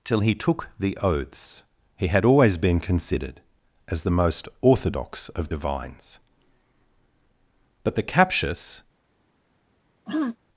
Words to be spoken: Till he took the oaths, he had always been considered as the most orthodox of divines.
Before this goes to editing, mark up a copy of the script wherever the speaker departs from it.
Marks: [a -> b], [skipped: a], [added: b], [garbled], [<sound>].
Till he took the oaths, he had always been considered as the most orthodox of divines. [added: But the captious] [throat clearing]